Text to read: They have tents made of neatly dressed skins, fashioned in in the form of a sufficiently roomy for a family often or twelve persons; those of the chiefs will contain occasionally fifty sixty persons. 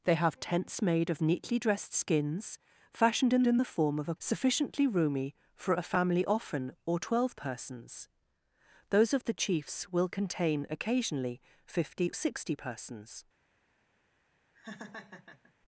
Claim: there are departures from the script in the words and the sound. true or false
true